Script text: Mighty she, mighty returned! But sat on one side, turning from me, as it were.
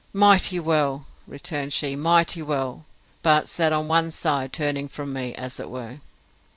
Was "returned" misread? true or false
true